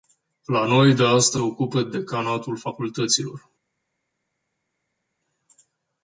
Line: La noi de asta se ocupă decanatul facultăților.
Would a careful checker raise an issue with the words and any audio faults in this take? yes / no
yes